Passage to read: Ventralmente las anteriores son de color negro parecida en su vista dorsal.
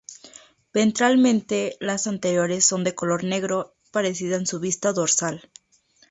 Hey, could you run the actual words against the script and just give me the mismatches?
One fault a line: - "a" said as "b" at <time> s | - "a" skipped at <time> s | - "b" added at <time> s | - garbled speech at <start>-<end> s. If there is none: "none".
none